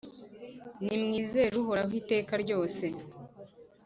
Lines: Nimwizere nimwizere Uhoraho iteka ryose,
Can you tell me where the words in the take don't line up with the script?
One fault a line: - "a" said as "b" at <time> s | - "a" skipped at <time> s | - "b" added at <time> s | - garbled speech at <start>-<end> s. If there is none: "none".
- "nimwizere" skipped at 1.6 s